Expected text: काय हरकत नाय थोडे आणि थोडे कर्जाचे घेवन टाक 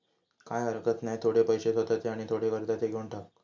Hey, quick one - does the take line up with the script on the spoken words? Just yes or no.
no